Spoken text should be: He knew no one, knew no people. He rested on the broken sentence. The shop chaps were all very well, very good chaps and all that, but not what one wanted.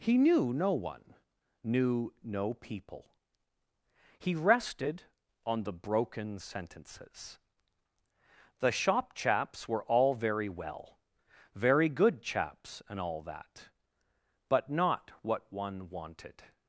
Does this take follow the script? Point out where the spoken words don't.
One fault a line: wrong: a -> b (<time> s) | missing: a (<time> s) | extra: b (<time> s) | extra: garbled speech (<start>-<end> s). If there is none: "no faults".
wrong: sentence -> sentences (6.4 s)